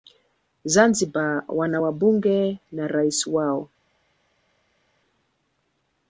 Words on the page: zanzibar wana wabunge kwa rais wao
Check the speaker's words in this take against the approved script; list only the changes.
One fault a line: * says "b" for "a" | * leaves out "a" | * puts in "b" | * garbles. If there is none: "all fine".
* says "na" for "kwa"